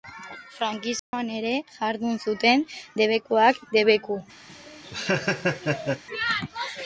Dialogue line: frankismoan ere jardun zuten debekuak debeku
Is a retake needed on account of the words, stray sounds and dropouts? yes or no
yes